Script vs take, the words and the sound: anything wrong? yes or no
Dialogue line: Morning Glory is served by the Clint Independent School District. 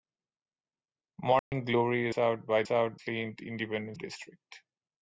yes